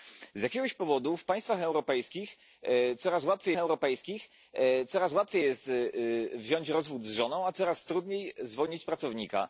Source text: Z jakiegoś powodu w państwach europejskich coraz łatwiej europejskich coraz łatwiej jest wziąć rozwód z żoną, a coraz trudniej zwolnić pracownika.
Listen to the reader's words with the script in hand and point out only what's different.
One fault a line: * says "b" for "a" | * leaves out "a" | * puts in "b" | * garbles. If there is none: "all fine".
all fine